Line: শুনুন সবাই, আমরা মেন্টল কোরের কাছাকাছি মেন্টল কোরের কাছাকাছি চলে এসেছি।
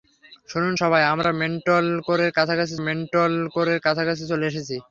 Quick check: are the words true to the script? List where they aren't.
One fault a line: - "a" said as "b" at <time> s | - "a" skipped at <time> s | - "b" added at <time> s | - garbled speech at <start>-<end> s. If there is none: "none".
none